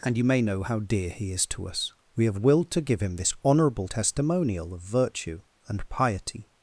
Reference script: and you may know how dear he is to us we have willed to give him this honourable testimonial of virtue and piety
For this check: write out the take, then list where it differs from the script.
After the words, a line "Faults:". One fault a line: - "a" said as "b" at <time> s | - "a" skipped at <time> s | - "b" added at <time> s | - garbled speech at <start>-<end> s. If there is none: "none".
and you may know how dear he is to us we have willed to give him this honourable testimonial of virtue and piety
Faults:
none